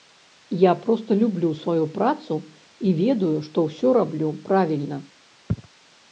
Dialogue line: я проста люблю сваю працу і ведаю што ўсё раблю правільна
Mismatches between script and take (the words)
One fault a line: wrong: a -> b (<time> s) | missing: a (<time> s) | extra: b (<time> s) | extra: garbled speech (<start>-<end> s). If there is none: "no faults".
no faults